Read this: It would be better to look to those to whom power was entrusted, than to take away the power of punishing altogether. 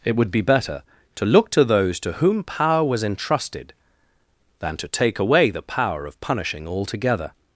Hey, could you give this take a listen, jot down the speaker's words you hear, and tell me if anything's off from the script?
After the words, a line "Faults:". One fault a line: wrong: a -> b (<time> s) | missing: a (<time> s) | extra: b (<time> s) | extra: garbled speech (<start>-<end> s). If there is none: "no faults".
It would be better to look to those to whom power was entrusted, than to take away the power of punishing altogether.
Faults:
no faults